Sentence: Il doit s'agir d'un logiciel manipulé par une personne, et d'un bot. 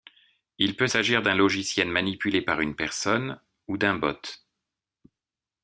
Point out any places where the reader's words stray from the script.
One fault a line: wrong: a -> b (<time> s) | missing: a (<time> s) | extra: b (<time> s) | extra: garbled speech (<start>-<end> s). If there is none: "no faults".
wrong: doit -> peut (0.8 s)
wrong: et -> ou (3.7 s)